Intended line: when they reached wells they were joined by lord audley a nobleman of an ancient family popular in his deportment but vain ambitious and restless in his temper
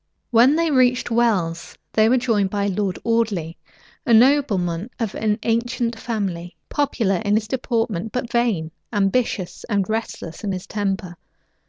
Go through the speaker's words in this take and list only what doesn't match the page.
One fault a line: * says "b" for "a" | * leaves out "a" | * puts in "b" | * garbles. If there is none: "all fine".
all fine